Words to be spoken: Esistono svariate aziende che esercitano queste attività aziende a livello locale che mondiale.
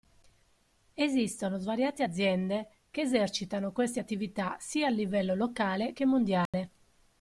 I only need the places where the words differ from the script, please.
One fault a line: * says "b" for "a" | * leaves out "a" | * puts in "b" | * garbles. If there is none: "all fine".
* says "sia" for "aziende"